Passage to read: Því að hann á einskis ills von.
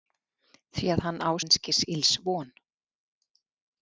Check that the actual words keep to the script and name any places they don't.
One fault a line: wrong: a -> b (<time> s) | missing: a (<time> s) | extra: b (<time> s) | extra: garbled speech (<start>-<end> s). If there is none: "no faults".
no faults